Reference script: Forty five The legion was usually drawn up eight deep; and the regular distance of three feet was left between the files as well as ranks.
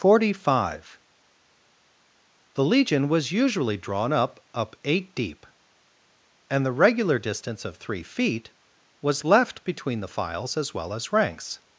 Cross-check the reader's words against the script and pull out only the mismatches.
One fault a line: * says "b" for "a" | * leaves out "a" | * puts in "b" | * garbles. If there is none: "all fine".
* puts in "up"